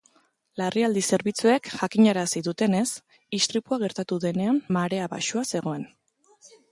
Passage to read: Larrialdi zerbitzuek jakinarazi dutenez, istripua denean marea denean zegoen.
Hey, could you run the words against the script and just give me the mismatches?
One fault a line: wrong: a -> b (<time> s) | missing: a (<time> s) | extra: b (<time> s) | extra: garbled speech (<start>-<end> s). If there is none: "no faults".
extra: gertatu (3.8 s)
wrong: denean -> baxua (5.1 s)